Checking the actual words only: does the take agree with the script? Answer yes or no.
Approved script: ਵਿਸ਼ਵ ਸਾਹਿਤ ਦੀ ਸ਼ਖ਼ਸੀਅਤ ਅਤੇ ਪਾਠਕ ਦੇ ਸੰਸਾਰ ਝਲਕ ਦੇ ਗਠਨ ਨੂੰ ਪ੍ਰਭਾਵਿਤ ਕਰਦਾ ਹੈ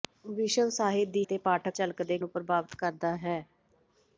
no